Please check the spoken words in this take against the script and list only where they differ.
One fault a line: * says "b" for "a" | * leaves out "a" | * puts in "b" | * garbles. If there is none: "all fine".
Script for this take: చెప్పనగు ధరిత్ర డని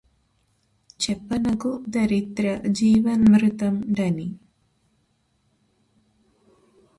* puts in "జీవన్మృతుం"